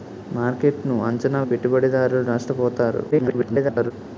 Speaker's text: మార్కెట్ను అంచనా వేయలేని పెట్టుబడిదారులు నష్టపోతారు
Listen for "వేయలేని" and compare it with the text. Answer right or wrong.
wrong